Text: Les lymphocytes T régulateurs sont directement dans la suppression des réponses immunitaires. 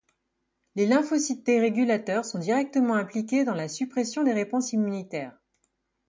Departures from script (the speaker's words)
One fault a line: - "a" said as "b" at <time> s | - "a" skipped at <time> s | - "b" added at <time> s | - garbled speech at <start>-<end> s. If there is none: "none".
- "impliqués" added at 3.0 s